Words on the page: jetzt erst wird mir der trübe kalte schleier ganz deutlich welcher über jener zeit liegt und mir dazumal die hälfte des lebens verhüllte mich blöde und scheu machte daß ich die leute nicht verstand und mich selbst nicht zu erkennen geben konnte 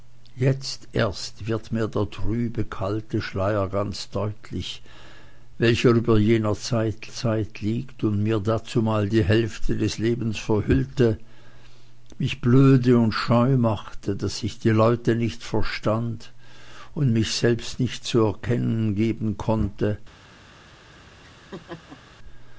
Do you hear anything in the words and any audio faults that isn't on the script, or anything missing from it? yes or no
yes